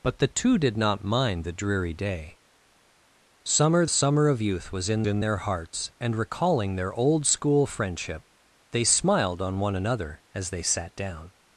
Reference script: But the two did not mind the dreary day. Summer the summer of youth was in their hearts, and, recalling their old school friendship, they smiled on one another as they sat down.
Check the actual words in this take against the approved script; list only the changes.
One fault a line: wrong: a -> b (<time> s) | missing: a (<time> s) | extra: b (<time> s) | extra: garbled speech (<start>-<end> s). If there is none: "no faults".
missing: the (3.9 s)
extra: in (5.1 s)